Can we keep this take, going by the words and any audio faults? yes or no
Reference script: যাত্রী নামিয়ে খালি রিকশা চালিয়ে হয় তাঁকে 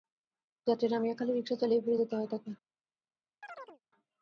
no